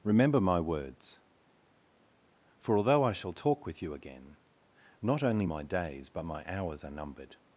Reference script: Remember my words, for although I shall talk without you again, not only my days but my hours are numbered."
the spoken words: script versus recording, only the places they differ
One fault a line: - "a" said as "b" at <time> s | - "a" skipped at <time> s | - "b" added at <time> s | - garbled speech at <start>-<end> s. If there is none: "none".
- "without" said as "with" at 3.7 s